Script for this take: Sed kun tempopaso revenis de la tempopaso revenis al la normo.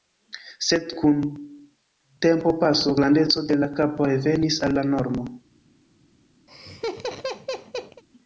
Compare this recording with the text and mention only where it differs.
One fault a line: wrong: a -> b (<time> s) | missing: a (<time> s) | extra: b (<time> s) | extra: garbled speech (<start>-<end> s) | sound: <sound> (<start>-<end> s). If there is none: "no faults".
wrong: revenis -> grandeco (3.0 s)
wrong: tempopaso -> kapo (3.8 s)
sound: laugh (6.5-8.0 s)